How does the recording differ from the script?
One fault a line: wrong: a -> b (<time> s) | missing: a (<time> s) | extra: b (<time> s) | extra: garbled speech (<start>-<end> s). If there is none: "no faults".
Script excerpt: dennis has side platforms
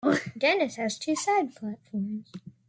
extra: two (1.0 s)